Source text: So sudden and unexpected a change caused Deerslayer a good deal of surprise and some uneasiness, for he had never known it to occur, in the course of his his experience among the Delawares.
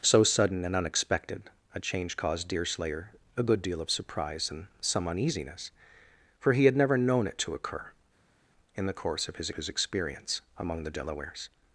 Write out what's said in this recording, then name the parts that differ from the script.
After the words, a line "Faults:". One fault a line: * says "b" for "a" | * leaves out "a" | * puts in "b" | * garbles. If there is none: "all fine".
So sudden and unexpected a change caused Deerslayer a good deal of surprise and some uneasiness, for he had never known it to occur, in the course of his his experience among the Delawares.
Faults:
all fine